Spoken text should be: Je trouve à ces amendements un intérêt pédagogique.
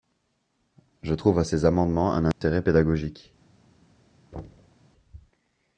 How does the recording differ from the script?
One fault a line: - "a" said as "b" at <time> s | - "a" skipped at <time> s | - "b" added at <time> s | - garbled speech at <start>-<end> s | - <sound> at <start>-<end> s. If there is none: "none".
- dropout at 2.3-2.4 s
- thud at 4.3-4.8 s